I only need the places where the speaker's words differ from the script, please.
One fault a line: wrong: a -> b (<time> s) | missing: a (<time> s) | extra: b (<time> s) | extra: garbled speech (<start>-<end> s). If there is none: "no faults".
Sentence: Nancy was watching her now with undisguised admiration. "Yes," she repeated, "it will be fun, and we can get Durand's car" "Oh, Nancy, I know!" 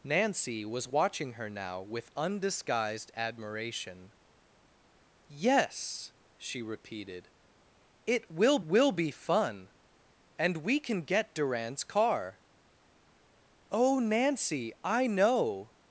extra: will (8.6 s)